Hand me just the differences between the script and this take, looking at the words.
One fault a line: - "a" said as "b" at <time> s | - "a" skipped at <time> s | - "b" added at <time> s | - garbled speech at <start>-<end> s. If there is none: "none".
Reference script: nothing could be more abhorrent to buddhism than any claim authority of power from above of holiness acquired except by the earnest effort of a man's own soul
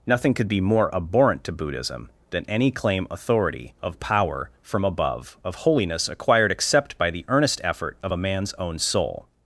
none